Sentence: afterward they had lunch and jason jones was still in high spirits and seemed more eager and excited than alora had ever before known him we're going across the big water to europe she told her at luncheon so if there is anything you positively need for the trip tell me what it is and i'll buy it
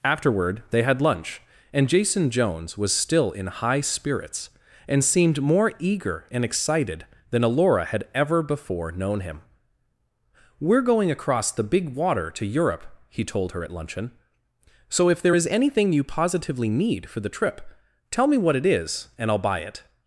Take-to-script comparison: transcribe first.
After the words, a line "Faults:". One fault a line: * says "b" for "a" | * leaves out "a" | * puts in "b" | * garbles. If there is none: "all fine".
afterward they had lunch and jason jones was still in high spirits and seemed more eager and excited than alora had ever before known him we're going across the big water to europe he told her at luncheon so if there is anything you positively need for the trip tell me what it is and i'll buy it
Faults:
* says "he" for "she"